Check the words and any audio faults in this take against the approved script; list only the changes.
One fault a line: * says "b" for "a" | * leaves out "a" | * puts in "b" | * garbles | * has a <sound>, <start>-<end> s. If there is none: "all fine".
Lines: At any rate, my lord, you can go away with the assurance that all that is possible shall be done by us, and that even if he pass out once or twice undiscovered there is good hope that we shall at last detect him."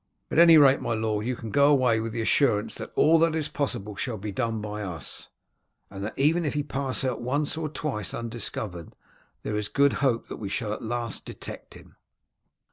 all fine